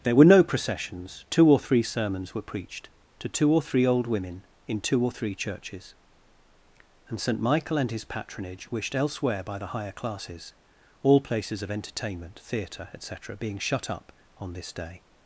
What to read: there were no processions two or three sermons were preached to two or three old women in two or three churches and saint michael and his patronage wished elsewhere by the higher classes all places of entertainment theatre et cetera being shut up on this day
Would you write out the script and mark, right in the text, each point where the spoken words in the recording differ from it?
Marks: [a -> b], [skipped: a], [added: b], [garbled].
there were no processions two or three sermons were preached to two or three old women in two or three churches and saint michael and his patronage wished elsewhere by the higher classes all places of entertainment theatre et cetera being shut up on this day